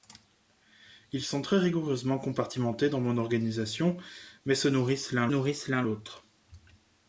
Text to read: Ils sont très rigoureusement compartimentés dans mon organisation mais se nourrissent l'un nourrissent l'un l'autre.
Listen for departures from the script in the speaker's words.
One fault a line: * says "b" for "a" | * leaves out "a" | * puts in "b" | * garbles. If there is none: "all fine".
all fine